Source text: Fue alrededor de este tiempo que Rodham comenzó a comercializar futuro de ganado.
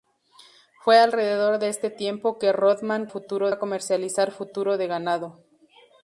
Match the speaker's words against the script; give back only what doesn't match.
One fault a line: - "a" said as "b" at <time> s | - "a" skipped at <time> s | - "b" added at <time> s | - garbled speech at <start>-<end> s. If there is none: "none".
- "comenzó" said as "futuro" at 3.1 s